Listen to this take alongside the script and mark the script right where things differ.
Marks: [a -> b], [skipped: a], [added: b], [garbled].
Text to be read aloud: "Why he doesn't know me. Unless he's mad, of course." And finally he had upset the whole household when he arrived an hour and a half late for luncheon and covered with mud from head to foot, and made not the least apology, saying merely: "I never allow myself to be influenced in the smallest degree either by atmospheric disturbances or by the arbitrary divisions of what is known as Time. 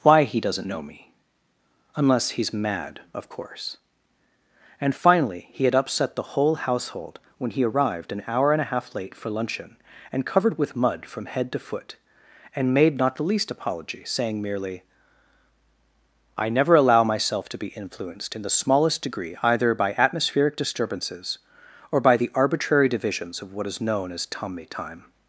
"Why he doesn't know me. Unless he's mad, of course." And finally he had upset the whole household when he arrived an hour and a half late for luncheon and covered with mud from head to foot, and made not the least apology, saying merely: "I never allow myself to be influenced in the smallest degree either by atmospheric disturbances or by the arbitrary divisions of what is known as [added: tommy] Time.